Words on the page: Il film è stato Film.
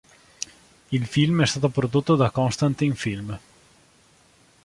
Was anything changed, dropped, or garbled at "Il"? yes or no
no